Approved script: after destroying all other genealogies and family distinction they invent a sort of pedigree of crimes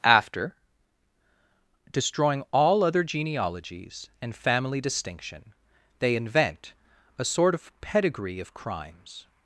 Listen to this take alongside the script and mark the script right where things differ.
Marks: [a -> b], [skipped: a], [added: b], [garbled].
after destroying all other genealogies and family distinction they invent a sort of pedigree of crimes